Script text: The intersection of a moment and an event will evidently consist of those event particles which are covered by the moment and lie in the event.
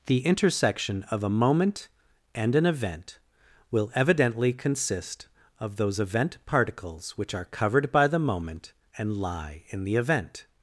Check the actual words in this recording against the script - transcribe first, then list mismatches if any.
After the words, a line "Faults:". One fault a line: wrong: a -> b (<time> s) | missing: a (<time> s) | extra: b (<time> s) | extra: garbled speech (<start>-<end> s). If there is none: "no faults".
The intersection of a moment and an event will evidently consist of those event particles which are covered by the moment and lie in the event.
Faults:
no faults